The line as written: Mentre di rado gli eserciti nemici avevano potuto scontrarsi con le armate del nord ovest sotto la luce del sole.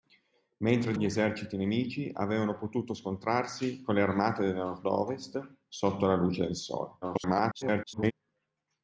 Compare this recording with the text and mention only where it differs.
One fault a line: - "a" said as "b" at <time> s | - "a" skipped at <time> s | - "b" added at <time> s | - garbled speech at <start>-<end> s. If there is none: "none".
- "di rado" skipped at 0.9 s
- garbled speech at 7.0-8.1 s